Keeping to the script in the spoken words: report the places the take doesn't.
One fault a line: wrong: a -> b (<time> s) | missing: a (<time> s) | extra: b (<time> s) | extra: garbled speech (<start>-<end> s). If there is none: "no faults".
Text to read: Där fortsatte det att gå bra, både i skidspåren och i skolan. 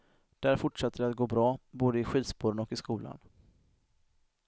no faults